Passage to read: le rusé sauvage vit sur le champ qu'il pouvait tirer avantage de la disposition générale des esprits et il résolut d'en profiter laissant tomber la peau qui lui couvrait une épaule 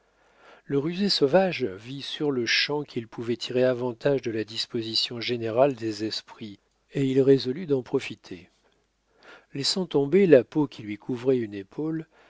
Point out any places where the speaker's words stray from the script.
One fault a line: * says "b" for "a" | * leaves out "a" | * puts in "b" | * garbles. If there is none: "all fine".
all fine